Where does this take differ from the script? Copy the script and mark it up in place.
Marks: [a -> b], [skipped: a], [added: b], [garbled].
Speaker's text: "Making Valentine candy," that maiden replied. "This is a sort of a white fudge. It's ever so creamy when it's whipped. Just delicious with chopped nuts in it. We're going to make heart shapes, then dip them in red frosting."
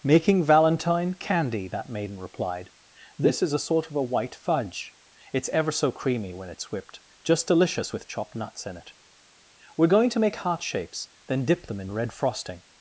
"Making Valentine candy," that maiden replied. "This is a sort of a white fudge. It's ever so creamy when it's whipped. Just delicious with chopped nuts in it. We're going to make heart shapes, then dip them in red frosting."